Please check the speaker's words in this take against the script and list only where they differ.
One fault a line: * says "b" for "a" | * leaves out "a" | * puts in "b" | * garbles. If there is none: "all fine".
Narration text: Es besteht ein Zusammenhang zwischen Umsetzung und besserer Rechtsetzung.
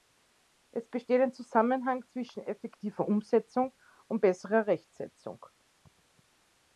* puts in "effektiver"